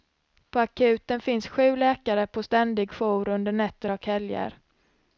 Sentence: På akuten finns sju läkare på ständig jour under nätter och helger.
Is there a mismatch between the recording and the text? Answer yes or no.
no